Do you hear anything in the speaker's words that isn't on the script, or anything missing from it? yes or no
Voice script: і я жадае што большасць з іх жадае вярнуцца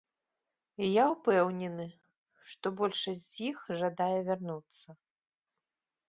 yes